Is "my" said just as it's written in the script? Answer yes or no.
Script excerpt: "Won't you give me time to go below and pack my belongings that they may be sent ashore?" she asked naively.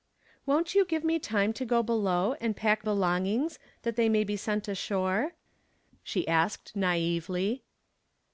no